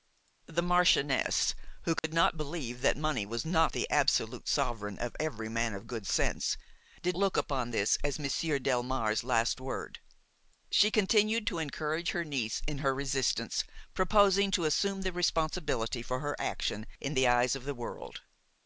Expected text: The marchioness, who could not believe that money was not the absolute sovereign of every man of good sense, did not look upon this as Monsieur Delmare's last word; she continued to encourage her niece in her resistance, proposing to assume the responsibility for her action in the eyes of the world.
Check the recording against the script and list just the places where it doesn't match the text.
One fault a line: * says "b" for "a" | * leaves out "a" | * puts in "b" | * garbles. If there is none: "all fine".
* leaves out "not"